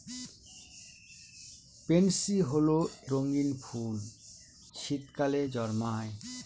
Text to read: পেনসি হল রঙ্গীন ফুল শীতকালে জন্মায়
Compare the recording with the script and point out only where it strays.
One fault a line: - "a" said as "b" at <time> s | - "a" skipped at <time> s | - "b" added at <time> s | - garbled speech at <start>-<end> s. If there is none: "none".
none